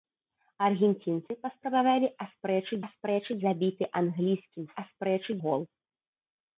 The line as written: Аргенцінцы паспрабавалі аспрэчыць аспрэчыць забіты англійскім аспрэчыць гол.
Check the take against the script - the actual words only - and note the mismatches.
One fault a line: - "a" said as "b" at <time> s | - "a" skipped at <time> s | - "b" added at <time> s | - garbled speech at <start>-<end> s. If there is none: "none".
none